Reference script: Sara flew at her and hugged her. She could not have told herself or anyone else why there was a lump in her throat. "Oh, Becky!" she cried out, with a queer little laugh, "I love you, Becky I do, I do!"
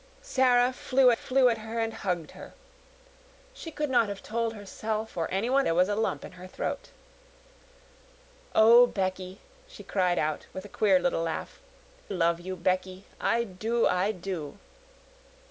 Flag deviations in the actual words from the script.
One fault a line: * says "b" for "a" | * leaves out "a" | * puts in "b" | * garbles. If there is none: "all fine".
* puts in "flew"
* leaves out "else why"
* leaves out "I"